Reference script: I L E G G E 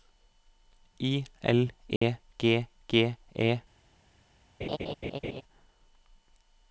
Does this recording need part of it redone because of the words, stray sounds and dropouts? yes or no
yes